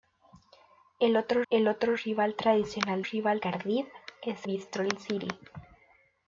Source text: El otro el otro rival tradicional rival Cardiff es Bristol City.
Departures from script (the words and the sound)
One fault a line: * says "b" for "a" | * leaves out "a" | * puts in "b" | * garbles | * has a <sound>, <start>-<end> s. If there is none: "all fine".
all fine